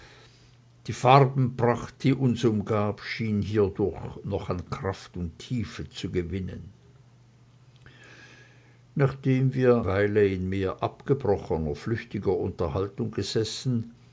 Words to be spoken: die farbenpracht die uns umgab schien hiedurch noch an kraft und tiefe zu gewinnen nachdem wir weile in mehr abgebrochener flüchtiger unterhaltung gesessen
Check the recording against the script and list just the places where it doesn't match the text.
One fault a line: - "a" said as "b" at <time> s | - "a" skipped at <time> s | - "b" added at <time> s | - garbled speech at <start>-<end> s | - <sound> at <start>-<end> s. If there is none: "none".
none